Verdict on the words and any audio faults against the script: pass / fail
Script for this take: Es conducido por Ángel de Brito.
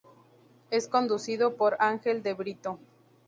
pass